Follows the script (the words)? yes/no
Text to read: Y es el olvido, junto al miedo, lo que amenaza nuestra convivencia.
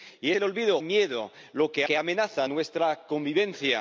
no